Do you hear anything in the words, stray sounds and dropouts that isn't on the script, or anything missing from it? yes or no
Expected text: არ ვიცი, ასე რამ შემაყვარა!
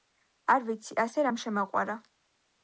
no